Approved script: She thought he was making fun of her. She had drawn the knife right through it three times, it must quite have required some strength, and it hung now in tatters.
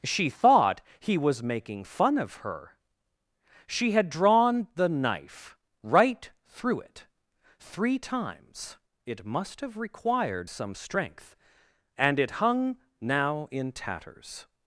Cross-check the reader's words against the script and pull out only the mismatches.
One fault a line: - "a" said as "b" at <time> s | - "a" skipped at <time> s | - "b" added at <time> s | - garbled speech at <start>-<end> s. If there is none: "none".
- "quite" skipped at 9.6 s